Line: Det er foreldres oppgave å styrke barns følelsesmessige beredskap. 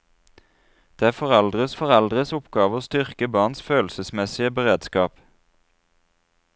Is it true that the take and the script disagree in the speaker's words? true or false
true